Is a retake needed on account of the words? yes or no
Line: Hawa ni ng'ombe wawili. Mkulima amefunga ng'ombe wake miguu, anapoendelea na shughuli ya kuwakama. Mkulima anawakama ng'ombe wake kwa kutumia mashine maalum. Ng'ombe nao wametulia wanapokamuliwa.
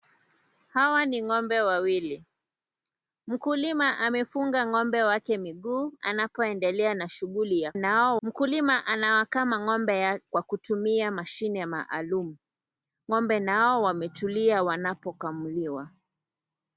yes